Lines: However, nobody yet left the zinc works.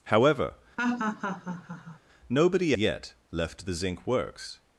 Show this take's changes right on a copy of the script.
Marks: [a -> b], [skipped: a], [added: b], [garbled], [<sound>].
However, [laugh] nobody yet left the zinc works.